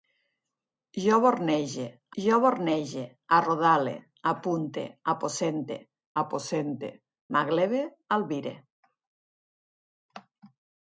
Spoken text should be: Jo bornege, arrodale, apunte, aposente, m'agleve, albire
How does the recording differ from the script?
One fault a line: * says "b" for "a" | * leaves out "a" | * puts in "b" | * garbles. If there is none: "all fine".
* puts in "jo bornege"
* puts in "aposente"